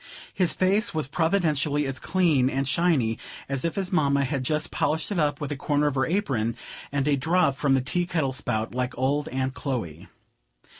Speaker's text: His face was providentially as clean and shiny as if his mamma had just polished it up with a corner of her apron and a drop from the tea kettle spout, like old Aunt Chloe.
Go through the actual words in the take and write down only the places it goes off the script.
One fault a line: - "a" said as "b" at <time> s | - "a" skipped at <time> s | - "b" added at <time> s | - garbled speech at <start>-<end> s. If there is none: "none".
none